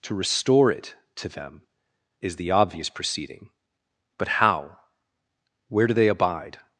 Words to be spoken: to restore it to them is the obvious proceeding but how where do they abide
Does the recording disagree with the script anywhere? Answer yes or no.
no